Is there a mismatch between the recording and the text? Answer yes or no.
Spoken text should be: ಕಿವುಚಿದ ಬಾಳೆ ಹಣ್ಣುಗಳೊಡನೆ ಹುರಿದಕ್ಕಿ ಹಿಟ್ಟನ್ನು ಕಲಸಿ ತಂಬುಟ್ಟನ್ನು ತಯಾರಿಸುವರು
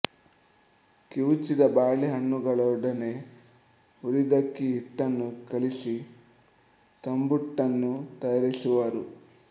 no